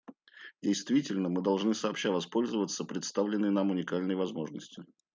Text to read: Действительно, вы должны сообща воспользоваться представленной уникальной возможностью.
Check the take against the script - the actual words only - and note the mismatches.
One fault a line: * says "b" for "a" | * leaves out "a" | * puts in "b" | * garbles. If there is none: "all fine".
* says "мы" for "вы"
* puts in "нам"